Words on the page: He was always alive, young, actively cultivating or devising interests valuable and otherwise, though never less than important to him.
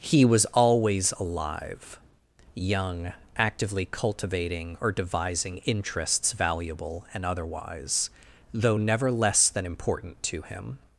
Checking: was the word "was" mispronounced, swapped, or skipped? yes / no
no